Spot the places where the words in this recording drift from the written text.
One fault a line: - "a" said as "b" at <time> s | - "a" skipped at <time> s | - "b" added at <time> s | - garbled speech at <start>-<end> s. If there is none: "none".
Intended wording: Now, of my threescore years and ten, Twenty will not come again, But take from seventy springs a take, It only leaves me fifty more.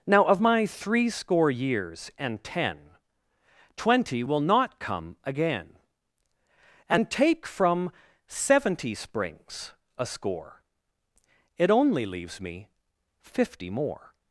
- "But" said as "And" at 6.9 s
- "take" said as "score" at 10.1 s